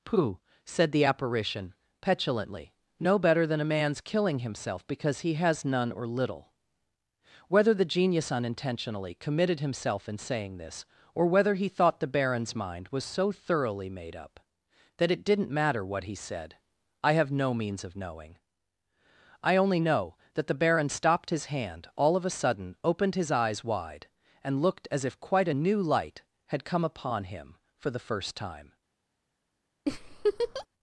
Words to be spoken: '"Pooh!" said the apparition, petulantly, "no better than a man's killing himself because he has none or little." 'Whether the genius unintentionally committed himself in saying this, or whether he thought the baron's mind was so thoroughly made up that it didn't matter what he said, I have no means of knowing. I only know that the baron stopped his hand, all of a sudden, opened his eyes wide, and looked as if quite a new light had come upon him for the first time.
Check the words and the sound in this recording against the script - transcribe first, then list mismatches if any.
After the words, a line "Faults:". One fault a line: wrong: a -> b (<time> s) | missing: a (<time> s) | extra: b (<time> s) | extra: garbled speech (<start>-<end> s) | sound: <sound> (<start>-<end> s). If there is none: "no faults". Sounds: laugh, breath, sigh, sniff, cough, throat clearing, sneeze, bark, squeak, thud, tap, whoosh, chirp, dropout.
'"Pooh!" said the apparition, petulantly, "no better than a man's killing himself because he has none or little." 'Whether the genius unintentionally committed himself in saying this, or whether he thought the baron's mind was so thoroughly made up that it didn't matter what he said, I have no means of knowing. I only know that the baron stopped his hand, all of a sudden, opened his eyes wide, and looked as if quite a new light had come upon him for the first time.
Faults:
sound: laugh (29.9-30.7 s)